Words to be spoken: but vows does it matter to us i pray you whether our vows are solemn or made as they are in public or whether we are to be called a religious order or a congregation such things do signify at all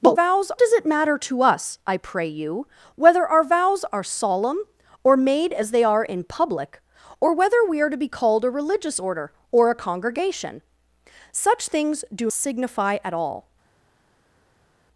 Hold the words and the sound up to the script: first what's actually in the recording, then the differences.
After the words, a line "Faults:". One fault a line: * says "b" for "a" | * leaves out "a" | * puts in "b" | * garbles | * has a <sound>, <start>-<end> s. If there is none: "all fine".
but vows does it matter to us i pray you whether our vows are solemn or made as they are in public or whether we are to be called a religious order or a congregation such things do signify at all
Faults:
all fine